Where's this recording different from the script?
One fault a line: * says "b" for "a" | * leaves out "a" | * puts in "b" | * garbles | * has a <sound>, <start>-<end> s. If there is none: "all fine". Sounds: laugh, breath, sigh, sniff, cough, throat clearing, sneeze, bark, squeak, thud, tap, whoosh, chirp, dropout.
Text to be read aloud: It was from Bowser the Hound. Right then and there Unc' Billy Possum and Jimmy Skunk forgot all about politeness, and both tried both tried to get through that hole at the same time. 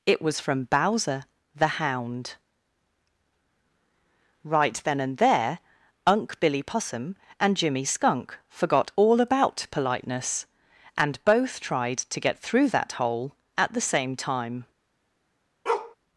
* leaves out "both tried"
* has a bark, 15.7-16.0 s